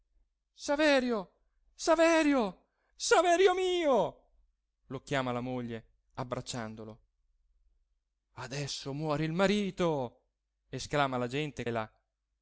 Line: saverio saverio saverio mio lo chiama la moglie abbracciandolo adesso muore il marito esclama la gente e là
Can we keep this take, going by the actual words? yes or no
yes